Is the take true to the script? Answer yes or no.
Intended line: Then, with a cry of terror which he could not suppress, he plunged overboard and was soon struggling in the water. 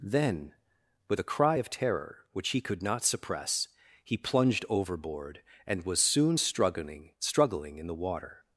no